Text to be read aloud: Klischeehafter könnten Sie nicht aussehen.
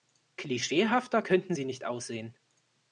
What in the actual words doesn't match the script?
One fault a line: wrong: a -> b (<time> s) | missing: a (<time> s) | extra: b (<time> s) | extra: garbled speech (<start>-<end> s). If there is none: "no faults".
no faults